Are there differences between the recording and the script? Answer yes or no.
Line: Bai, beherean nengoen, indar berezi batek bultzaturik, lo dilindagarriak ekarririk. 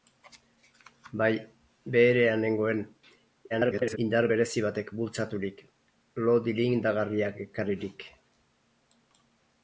yes